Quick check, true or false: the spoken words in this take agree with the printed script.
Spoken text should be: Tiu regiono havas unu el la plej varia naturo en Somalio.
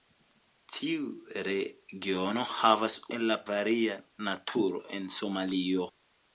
false